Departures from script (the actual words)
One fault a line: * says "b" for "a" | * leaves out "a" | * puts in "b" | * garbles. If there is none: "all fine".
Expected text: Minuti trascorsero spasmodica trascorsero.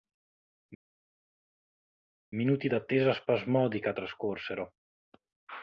* says "d'attesa" for "trascorsero"